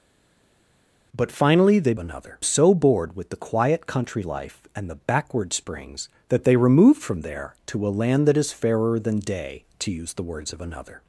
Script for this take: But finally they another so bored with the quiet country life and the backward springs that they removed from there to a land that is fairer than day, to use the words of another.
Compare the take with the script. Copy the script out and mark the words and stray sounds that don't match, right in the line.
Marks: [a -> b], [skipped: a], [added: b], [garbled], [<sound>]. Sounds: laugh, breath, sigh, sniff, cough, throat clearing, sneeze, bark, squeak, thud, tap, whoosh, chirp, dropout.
But finally they another so bored with the quiet country life and the backward springs that they removed from there to a land that is fairer than day, to use the words of another.